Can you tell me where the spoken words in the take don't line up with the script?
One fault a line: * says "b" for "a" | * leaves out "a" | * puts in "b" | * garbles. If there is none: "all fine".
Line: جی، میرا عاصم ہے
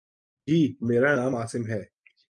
* puts in "نام"